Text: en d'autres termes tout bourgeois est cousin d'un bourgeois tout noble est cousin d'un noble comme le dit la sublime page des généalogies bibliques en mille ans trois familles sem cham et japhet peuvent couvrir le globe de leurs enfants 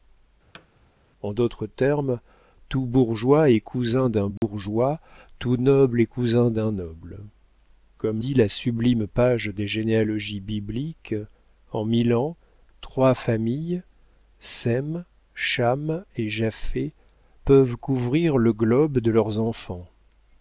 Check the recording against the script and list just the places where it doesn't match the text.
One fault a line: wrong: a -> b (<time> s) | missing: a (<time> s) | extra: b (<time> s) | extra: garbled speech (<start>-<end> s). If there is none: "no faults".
missing: le (8.2 s)